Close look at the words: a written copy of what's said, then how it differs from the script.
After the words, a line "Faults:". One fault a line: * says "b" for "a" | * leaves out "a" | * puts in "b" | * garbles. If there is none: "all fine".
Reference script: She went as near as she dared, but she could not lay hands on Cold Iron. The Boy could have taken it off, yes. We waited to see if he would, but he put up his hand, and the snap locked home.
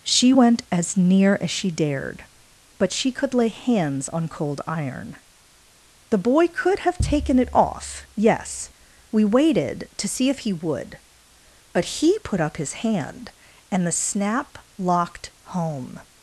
She went as near as she dared, but she could lay hands on Cold Iron. The Boy could have taken it off, yes. We waited to see if he would, but he put up his hand, and the snap locked home.
Faults:
* leaves out "not"